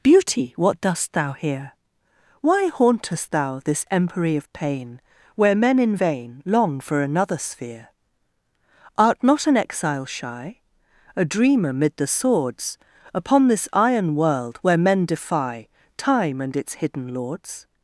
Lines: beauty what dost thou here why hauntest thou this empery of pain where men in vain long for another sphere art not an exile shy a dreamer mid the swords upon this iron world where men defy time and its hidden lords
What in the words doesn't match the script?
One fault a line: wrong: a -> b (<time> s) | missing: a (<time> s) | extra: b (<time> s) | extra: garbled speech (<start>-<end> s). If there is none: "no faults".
no faults